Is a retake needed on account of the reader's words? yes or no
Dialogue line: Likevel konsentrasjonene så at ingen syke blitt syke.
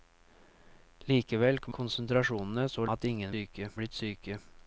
no